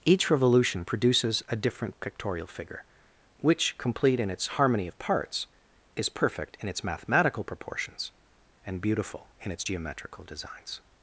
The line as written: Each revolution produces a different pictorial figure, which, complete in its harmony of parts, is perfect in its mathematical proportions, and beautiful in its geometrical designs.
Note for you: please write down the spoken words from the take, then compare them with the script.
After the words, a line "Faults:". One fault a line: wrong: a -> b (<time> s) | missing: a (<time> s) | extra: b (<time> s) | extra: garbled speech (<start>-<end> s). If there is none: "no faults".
Each revolution produces a different pictorial figure, which, complete in its harmony of parts, is perfect in its mathematical proportions, and beautiful in its geometrical designs.
Faults:
no faults